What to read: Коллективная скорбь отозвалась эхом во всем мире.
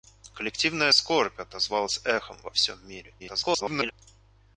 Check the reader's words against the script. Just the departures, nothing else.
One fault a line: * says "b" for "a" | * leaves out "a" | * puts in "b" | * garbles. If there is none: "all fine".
* garbles